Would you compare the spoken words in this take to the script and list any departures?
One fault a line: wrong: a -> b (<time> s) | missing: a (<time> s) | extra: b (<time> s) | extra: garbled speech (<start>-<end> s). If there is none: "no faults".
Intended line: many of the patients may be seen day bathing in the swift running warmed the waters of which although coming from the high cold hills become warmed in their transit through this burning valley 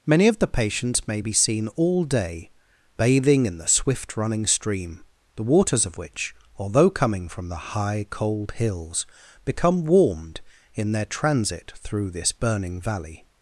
extra: all (1.8 s)
wrong: warmed -> stream (4.5 s)